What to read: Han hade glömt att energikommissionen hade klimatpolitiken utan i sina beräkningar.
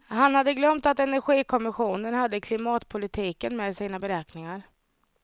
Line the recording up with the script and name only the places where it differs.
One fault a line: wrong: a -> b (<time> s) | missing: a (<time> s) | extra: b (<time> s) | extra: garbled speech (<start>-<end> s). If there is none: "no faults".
wrong: utan -> med (3.6 s)